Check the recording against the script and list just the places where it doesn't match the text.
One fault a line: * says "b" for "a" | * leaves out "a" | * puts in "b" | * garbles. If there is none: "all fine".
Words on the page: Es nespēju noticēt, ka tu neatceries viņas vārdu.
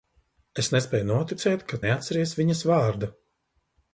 * leaves out "tu"